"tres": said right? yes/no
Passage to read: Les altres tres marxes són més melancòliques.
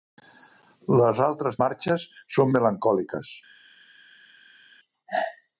no